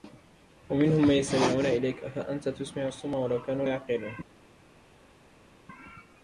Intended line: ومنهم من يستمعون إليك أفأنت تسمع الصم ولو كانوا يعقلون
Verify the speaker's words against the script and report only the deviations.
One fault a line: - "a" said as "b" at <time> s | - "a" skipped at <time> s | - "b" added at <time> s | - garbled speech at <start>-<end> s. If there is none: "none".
none